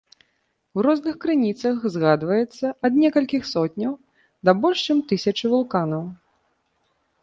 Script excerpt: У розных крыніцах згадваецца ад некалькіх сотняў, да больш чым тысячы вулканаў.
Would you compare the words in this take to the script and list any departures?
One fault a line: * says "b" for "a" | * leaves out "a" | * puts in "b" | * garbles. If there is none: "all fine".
all fine